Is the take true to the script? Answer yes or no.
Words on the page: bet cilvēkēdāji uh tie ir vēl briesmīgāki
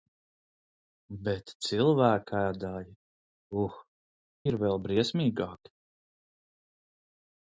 no